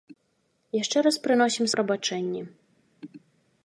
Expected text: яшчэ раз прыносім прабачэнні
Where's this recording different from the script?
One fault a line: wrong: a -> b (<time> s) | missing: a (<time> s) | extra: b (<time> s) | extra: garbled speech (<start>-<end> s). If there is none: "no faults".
no faults